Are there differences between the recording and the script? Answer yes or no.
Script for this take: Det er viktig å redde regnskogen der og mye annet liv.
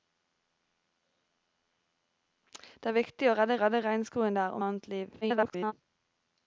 yes